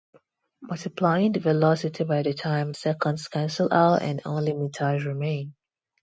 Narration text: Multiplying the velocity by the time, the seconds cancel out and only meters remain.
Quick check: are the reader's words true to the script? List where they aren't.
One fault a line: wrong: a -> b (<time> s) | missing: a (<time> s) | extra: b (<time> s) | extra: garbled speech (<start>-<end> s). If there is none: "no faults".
missing: the (2.7 s)